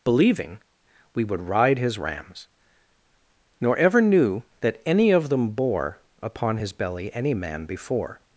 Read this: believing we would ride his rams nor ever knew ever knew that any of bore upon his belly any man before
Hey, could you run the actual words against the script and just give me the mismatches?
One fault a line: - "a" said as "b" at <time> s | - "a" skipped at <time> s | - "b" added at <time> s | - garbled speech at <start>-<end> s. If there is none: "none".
- "ever knew" skipped at 4.4 s
- "them" added at 5.3 s